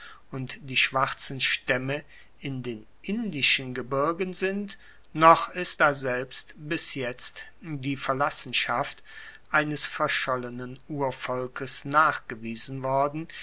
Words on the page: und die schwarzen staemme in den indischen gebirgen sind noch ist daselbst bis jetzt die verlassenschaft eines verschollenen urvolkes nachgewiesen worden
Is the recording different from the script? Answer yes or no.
no